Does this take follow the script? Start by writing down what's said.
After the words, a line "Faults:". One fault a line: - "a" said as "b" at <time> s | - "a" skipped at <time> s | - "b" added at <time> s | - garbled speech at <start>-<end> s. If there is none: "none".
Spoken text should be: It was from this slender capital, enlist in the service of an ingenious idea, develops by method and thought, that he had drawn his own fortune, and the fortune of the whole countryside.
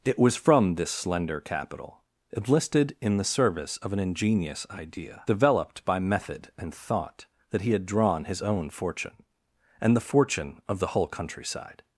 It was from this slender capital, enlisted in the service of an ingenious idea, developed by method and thought, that he had drawn his own fortune, and the fortune of the whole countryside.
Faults:
- "enlist" said as "enlisted" at 2.4 s
- "develops" said as "developed" at 5.3 s